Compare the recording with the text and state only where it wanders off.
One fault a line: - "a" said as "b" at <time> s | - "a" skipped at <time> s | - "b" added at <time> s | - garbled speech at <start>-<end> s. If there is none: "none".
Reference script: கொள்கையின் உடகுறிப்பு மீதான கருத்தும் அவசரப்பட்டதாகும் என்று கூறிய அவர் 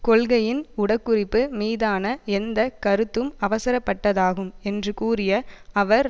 - "எந்த" added at 2.3 s